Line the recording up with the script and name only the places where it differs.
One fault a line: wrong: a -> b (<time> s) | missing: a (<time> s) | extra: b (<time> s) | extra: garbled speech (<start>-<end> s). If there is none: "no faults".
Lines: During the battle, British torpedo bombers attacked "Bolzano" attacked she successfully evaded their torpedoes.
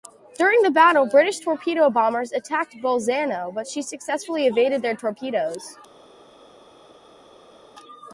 wrong: attacked -> but (3.5 s)